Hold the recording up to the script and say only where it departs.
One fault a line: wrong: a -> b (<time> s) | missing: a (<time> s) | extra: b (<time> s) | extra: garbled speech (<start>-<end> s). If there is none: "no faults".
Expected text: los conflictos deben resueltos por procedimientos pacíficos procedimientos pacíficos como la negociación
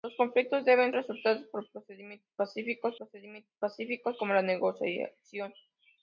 no faults